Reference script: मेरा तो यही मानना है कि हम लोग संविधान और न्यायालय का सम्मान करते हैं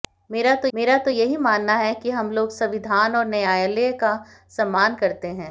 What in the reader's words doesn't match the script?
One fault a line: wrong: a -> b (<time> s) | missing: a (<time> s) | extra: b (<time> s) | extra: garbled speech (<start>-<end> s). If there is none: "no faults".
extra: मेरा तो (0.7 s)